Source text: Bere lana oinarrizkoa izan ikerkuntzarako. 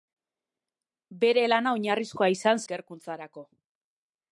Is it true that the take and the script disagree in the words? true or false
false